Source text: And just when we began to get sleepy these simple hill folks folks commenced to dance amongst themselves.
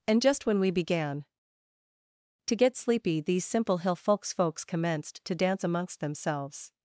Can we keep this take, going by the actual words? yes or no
yes